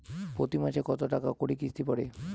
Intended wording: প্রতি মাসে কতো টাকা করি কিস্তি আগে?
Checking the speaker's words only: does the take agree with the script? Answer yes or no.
no